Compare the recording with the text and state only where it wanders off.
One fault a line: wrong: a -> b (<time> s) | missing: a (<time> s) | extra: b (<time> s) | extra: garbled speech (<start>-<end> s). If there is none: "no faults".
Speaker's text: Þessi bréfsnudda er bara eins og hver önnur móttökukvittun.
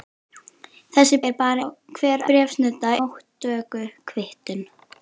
missing: bréfsnudda (1.2 s)
missing: eins (1.6 s)
wrong: önnur -> bréfsnudda (2.3 s)